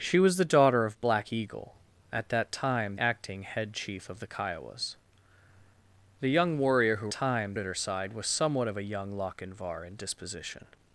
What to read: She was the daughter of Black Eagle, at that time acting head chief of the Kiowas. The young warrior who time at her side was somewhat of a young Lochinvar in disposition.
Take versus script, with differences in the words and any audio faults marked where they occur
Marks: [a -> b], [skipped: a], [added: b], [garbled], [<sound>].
She was the daughter of Black Eagle, at that time acting head chief of the Kiowas. The young warrior who time at her side was somewhat of a young Lochinvar in disposition.